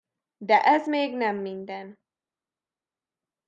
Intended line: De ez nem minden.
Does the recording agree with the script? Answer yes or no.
no